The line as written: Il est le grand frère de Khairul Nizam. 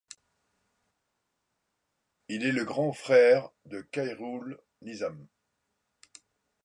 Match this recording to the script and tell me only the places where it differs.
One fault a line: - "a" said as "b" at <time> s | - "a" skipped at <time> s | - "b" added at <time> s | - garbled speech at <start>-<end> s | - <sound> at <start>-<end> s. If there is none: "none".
none